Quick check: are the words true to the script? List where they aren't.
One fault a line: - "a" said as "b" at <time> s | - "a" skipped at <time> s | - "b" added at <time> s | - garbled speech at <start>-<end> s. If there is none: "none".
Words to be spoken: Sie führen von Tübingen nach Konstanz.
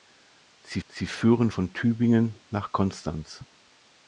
- "sie" added at 0.9 s